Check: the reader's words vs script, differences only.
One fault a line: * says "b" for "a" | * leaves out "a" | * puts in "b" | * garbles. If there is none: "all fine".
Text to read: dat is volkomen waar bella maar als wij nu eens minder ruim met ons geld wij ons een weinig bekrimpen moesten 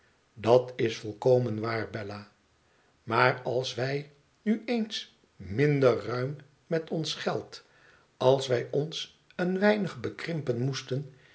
* puts in "als"